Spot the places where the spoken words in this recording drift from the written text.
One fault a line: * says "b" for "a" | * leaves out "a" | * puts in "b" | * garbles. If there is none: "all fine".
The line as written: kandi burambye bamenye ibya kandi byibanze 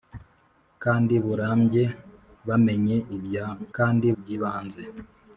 all fine